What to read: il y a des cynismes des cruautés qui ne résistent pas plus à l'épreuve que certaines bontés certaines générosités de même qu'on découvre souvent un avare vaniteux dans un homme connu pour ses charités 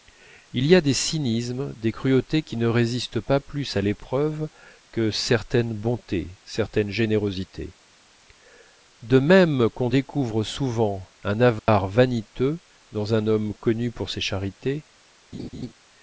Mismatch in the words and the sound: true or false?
true